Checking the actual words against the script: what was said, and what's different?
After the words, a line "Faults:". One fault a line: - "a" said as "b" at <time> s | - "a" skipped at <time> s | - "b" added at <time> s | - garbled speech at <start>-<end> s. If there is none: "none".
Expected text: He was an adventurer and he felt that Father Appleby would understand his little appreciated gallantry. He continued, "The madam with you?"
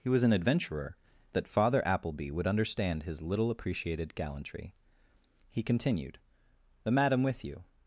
He was an adventurer that Father Appleby would understand his little appreciated gallantry. He continued, "The madam with you?"
Faults:
- "and he felt" skipped at 1.0 s